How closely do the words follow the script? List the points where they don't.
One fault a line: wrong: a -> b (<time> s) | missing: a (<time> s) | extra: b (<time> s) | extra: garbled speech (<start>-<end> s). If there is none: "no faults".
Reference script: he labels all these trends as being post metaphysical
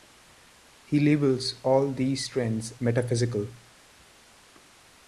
missing: as being post (2.7 s)